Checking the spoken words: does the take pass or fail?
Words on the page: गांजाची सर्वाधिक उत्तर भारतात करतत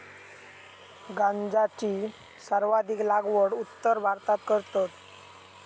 fail